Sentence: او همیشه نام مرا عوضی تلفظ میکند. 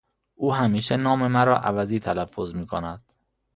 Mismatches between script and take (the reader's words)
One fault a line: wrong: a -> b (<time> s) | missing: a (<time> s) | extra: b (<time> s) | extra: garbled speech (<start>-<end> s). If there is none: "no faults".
no faults